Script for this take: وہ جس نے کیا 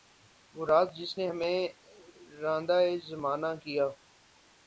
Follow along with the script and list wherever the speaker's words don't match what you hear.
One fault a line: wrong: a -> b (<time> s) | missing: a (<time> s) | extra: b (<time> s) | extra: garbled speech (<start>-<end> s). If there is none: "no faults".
extra: راز (0.7 s)
extra: ہمیں راندۂ زمانہ (1.3 s)